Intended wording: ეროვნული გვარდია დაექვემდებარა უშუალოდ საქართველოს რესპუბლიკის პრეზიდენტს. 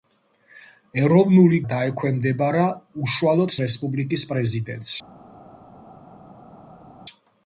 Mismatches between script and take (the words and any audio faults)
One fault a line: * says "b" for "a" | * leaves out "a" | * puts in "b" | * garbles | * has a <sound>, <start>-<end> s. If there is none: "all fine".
* leaves out "გვარდია"
* leaves out "საქართველოს"